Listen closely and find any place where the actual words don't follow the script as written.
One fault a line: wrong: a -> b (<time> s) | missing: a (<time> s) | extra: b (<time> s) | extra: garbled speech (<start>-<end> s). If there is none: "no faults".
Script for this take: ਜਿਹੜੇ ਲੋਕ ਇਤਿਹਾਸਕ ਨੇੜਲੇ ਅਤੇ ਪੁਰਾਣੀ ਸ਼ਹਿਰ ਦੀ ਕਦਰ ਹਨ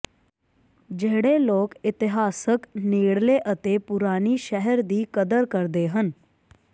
extra: ਕਰਦੇ (5.5 s)